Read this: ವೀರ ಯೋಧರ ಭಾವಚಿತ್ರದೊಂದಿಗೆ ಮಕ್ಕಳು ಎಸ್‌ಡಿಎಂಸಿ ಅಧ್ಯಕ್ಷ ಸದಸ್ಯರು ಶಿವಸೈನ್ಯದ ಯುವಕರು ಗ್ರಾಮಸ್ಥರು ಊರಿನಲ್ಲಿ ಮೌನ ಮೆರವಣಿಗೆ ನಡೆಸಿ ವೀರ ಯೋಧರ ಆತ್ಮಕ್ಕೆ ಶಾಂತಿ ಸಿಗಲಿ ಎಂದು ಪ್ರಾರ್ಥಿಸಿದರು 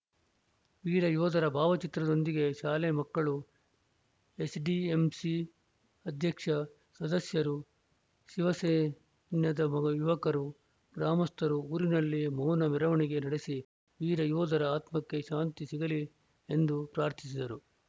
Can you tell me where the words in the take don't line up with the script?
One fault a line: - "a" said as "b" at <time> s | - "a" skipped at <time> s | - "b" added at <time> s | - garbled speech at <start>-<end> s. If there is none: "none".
- "ಶಾಲೆ" added at 2.5 s